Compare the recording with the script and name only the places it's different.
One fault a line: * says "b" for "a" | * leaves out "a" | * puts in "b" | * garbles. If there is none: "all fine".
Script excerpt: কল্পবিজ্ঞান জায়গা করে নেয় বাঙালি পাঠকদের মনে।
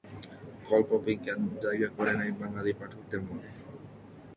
all fine